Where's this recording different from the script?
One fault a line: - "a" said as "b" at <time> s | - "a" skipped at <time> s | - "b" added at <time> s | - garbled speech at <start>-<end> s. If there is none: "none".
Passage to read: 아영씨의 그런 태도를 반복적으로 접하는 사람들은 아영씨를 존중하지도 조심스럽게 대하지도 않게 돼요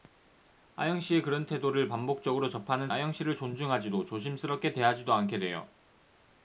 - "사람들은" skipped at 2.9 s